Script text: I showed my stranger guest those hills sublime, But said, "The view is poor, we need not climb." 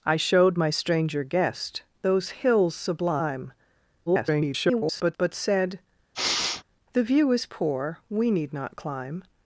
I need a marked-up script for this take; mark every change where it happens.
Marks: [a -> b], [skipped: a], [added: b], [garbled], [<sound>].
I showed my stranger guest those hills sublime, [garbled] But said, [sniff] "The view is poor, we need not climb."